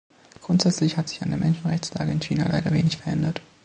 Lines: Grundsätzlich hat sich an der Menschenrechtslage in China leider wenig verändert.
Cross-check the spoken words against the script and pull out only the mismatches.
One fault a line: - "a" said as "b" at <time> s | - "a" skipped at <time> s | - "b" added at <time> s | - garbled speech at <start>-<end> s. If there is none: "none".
none